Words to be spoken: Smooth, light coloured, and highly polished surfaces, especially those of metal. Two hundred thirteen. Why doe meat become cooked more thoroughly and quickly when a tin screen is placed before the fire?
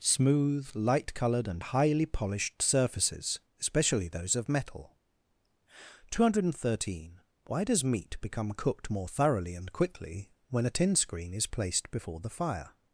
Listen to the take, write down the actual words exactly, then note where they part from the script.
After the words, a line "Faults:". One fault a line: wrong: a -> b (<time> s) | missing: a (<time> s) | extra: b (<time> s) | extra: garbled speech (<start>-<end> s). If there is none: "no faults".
Smooth, light coloured, and highly polished surfaces, especially those of metal. Two hundred thirteen. Why does meat become cooked more thoroughly and quickly when a tin screen is placed before the fire?
Faults:
wrong: doe -> does (7.6 s)